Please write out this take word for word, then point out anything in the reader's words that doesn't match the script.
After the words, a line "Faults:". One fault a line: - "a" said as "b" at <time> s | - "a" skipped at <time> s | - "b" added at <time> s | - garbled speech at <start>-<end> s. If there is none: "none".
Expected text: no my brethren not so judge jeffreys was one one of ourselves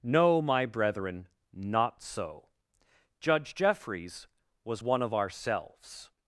no my brethren not so judge jeffreys was one of ourselves
Faults:
- "one" skipped at 5.0 s